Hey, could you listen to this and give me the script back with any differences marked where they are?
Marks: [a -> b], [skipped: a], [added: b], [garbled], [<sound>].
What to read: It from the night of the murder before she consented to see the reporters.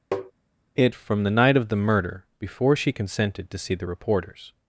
[tap] It from the night of the murder before she consented to see the reporters.